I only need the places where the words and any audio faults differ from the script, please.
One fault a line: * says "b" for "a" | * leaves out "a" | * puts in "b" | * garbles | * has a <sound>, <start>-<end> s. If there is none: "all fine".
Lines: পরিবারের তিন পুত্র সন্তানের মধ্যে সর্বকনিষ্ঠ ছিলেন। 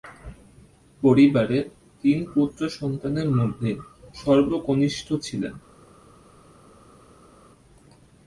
all fine